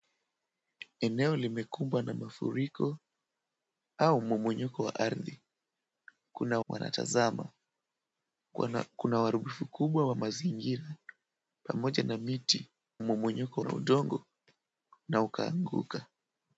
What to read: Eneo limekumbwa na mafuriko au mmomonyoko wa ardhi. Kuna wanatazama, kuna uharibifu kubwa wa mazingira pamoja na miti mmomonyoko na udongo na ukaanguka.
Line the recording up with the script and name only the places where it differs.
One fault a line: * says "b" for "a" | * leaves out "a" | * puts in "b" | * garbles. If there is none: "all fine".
all fine